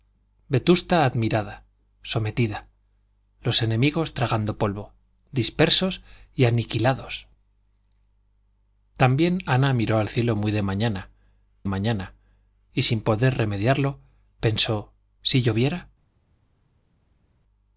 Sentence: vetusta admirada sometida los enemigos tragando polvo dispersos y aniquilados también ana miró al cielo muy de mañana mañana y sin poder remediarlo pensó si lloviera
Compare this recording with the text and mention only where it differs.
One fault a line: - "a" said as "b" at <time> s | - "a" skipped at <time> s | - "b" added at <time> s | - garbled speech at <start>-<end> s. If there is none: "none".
none